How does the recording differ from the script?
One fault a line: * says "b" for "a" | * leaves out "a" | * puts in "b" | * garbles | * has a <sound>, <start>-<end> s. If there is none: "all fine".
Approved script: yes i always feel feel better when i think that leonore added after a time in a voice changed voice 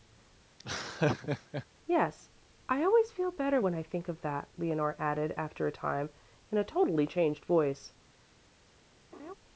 * has a laugh, 0.6-1.7 s
* leaves out "feel"
* puts in "of"
* says "totally" for "voice"
* has a laugh, 9.1-9.3 s